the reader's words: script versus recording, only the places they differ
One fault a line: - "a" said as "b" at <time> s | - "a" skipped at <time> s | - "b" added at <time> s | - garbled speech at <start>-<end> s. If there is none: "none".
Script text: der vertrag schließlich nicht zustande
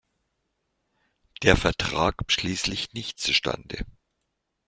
none